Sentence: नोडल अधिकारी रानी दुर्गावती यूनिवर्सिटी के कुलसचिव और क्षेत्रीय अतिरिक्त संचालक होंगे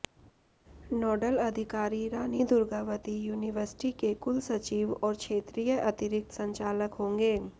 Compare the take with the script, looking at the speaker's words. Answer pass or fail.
pass